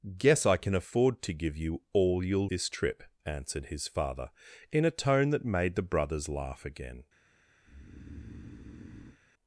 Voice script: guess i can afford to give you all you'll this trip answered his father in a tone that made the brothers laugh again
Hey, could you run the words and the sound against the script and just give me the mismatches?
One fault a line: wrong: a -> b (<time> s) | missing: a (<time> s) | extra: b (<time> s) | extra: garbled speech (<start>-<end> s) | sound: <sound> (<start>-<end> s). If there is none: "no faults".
sound: breath (7.6-9.2 s)